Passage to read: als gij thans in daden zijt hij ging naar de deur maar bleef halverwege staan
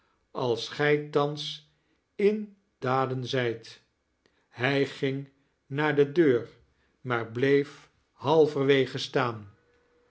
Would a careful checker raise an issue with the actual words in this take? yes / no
no